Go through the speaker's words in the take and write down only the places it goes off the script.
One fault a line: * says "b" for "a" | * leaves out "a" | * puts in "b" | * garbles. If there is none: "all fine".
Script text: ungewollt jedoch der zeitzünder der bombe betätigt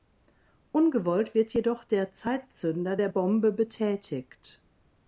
* puts in "wird"